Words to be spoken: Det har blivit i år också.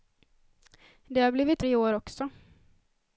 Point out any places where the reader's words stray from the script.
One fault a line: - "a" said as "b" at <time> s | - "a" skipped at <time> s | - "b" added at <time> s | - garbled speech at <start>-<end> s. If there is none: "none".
none